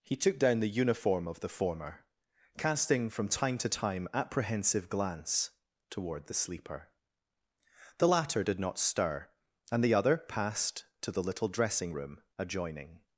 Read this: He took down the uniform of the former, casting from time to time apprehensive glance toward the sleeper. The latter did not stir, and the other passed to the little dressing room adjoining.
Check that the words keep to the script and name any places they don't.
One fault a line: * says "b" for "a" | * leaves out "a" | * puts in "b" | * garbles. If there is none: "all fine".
all fine